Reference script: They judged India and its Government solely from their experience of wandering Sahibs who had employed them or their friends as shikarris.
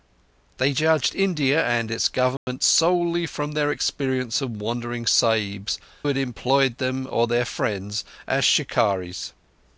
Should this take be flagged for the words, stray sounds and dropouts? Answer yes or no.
yes